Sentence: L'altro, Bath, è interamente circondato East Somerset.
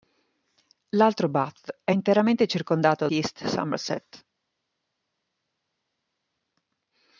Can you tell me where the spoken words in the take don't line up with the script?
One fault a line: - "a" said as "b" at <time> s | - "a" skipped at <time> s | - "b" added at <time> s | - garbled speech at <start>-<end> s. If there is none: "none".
none